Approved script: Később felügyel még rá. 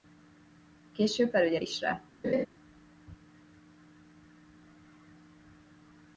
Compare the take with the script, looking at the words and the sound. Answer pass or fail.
fail